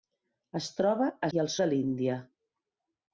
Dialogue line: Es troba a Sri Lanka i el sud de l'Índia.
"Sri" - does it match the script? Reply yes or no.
no